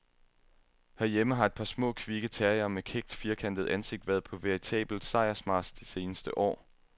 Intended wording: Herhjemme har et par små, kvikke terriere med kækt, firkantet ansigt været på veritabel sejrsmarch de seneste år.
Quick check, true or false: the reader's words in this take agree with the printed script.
true